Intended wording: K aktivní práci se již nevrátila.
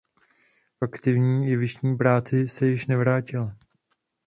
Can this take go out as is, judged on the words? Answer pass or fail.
fail